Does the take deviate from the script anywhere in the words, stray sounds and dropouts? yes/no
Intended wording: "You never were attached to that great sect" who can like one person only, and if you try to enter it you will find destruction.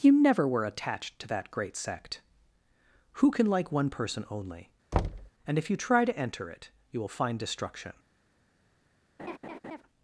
yes